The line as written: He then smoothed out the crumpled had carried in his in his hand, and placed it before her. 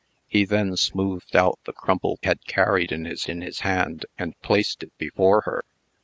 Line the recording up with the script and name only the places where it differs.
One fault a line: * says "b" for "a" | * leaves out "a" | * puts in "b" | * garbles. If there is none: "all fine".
all fine